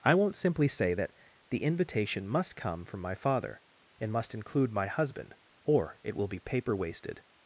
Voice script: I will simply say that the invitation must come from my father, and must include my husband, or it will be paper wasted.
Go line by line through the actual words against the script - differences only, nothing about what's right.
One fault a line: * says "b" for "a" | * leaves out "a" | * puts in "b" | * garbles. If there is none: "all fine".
* says "won't" for "will"